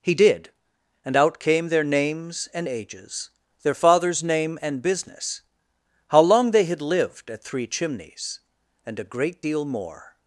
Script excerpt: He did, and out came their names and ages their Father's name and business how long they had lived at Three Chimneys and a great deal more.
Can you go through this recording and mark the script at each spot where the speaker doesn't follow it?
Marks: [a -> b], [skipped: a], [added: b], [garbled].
He did, and out came their names and ages their Father's name and business how long they had lived at Three Chimneys and a great deal more.